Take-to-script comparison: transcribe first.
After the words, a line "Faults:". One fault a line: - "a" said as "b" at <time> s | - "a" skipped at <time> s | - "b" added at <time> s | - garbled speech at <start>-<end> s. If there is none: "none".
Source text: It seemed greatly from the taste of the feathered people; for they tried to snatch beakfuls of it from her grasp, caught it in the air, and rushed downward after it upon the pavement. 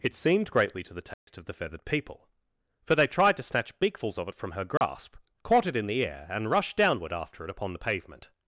It seemed greatly to the taste of the feathered people; for they tried to snatch beakfuls of it from her grasp, caught it in the air, and rushed downward after it upon the pavement.
Faults:
- "from" said as "to" at 0.8 s